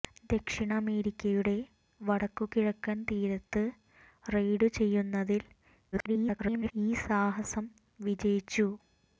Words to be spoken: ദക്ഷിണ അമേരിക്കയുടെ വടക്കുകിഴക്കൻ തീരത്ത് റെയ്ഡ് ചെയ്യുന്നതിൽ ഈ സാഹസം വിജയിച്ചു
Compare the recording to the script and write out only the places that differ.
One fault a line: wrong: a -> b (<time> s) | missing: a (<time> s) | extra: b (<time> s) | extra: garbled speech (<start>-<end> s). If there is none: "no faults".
extra: garbled speech (5.9-6.7 s)